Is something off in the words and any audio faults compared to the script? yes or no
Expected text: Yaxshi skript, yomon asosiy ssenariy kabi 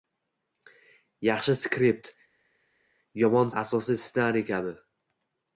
no